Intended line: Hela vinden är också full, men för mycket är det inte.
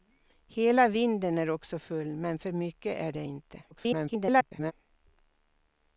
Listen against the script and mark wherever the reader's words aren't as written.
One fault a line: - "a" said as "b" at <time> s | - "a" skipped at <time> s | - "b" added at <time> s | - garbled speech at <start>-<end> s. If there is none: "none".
- garbled speech at 3.7-4.7 s